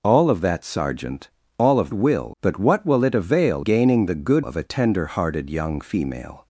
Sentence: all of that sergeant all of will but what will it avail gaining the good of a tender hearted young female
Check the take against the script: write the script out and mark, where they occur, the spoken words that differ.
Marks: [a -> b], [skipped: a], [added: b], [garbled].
all of that sergeant all of will but what will it avail gaining the good of a tender hearted young female